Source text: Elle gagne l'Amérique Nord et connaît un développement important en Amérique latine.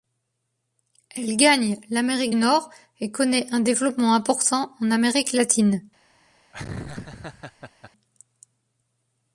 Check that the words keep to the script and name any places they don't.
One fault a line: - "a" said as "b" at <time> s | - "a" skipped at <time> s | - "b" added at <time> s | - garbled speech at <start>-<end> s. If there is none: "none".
none